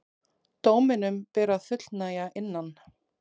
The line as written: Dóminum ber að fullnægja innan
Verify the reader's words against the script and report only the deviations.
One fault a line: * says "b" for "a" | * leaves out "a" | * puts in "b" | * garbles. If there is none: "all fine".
all fine